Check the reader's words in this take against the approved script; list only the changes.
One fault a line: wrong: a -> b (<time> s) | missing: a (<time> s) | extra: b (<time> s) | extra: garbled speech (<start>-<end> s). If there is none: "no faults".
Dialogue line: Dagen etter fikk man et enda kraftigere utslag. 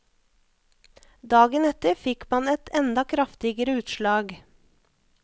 no faults